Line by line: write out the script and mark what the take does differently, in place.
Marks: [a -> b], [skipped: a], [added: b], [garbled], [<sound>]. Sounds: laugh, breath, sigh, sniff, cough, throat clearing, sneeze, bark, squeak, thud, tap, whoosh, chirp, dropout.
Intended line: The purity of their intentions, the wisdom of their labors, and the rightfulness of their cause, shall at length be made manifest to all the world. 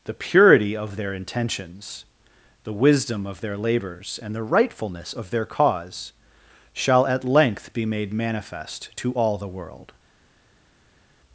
The purity of their intentions, the wisdom of their labors, and the rightfulness of their cause, shall at length be made manifest to all the world.